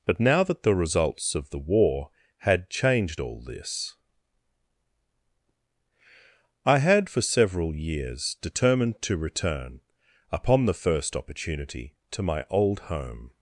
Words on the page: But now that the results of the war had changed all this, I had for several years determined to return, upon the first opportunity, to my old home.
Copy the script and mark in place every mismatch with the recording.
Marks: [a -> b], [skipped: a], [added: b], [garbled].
But now that the results of the war had changed all this, I had for several years determined to return, upon the first opportunity, to my old home.